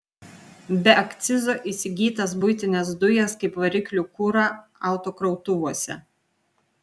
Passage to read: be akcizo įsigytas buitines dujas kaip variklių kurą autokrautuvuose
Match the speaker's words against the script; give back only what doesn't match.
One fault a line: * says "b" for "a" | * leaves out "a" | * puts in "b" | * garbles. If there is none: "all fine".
all fine